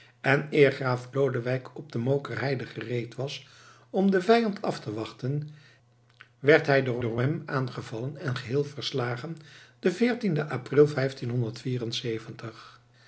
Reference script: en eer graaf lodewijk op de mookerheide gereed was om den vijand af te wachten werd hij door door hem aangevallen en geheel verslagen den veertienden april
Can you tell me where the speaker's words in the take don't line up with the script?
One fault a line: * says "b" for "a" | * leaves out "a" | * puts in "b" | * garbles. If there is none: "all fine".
all fine